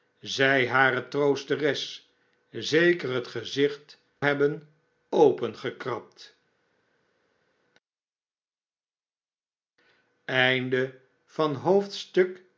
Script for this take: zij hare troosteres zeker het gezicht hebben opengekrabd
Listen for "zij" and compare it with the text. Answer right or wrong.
right